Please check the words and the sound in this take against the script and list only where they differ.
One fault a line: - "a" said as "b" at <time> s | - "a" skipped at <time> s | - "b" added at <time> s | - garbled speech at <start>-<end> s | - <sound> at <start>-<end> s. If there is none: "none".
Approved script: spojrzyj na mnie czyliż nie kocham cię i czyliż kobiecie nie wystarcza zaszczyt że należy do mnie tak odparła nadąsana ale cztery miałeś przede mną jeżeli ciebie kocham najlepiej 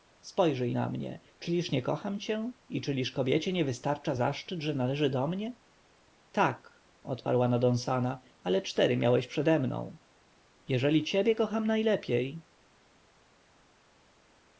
none